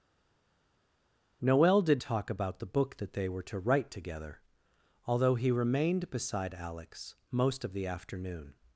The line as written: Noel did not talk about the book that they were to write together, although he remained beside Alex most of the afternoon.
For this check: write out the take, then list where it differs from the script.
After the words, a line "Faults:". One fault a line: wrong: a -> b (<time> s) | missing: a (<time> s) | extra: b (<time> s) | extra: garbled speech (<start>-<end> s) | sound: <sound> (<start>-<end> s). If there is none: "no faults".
Noel did talk about the book that they were to write together, although he remained beside Alex most of the afternoon.
Faults:
missing: not (2.0 s)